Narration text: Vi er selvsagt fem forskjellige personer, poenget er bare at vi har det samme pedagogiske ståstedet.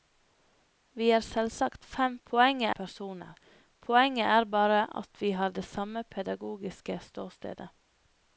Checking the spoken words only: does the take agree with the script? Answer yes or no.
no